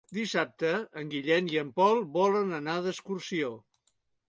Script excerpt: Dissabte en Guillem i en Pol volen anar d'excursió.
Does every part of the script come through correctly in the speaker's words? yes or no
yes